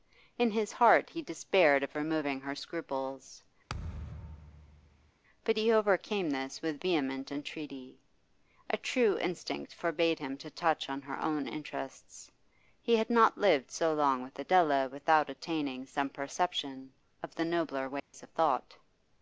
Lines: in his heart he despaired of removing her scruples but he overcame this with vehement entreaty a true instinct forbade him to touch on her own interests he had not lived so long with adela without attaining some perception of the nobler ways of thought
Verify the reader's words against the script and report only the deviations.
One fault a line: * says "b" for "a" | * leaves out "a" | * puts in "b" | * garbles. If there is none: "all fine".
all fine